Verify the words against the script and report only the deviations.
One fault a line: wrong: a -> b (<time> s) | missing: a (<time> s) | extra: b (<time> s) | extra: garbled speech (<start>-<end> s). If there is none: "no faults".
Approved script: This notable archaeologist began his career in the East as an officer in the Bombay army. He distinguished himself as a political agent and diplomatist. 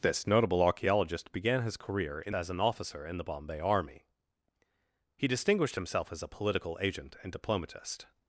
missing: the East (2.4 s)